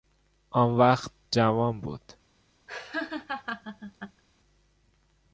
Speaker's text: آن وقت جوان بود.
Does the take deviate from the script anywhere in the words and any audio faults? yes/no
yes